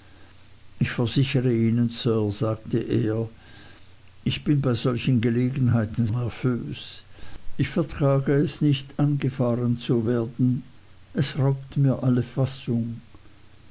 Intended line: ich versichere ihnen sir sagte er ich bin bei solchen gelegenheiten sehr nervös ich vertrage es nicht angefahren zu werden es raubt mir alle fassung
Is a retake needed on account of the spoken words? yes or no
yes